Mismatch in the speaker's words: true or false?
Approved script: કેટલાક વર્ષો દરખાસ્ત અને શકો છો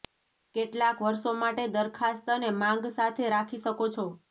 true